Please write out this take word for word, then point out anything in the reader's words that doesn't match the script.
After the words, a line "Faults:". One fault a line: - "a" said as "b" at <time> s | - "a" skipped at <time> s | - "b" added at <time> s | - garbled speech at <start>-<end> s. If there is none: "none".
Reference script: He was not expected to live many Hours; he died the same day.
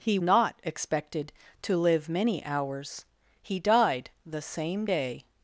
He not expected to live many Hours; he died the same day.
Faults:
- "was" skipped at 0.2 s